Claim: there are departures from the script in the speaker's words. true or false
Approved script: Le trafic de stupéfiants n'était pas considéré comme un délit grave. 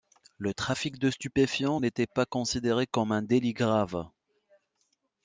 false